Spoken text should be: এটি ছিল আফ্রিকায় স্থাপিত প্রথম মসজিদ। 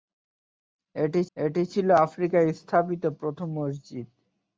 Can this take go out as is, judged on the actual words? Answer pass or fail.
fail